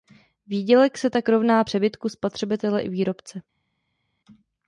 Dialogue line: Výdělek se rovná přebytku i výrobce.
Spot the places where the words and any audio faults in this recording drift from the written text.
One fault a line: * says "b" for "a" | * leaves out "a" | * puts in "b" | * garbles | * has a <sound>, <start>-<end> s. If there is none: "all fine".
* puts in "tak"
* puts in "spotřebitele"